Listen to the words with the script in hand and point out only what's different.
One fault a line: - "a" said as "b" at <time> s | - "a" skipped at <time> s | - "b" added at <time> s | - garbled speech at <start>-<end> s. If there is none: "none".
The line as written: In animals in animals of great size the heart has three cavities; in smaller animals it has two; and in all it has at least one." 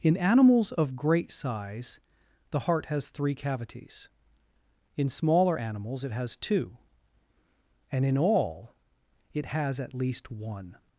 - "in animals" skipped at 0.7 s